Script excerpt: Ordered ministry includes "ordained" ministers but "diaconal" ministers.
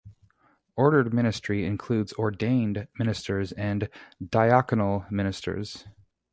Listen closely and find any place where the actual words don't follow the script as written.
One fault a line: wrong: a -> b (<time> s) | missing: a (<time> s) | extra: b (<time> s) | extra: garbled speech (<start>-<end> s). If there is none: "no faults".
wrong: but -> and (3.5 s)